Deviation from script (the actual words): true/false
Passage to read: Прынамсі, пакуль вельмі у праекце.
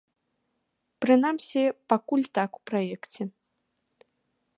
true